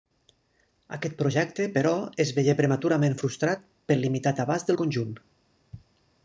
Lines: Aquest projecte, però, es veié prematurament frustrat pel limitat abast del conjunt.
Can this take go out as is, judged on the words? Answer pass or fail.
pass